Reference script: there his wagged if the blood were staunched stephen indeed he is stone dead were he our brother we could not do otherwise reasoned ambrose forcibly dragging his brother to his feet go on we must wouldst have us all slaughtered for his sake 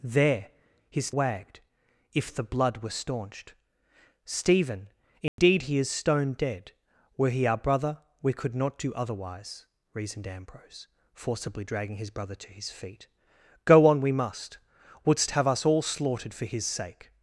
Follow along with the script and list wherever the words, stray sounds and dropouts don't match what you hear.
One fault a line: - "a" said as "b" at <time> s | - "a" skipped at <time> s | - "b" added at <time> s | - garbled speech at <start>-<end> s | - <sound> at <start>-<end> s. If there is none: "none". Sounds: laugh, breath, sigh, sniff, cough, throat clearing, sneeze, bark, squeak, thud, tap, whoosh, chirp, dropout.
- dropout at 5.3-5.4 s